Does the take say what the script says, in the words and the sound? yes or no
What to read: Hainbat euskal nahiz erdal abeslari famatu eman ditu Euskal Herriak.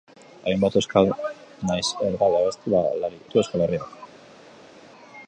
no